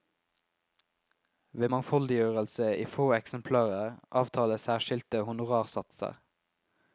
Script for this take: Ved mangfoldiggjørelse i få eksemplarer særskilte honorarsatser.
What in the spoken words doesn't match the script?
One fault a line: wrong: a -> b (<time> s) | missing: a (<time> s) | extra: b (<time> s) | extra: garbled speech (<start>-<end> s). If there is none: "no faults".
extra: avtales (4.2 s)